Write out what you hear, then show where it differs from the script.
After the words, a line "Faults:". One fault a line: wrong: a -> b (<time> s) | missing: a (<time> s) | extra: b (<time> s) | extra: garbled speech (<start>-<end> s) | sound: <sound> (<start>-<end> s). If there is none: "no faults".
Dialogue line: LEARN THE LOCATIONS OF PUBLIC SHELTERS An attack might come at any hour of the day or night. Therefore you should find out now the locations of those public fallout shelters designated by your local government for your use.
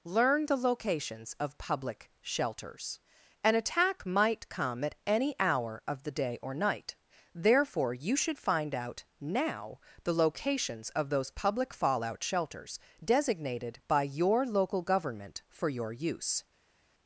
LEARN THE LOCATIONS OF PUBLIC SHELTERS An attack might come at any hour of the day or night. Therefore you should find out now the locations of those public fallout shelters designated by your local government for your use.
Faults:
no faults